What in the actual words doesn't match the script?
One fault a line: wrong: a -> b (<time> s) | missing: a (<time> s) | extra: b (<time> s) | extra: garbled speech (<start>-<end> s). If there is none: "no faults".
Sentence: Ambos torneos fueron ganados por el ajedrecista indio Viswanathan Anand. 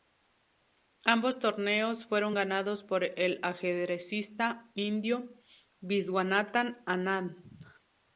no faults